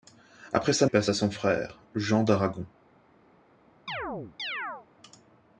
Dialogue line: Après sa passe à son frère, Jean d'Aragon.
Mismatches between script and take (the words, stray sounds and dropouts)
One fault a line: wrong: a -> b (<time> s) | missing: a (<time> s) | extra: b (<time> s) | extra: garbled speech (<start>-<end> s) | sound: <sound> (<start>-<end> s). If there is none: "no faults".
sound: chirp (3.9-4.9 s)